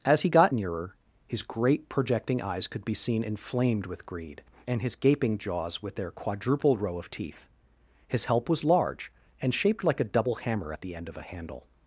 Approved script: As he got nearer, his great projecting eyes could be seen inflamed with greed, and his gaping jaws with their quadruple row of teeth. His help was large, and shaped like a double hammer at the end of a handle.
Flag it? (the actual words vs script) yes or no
no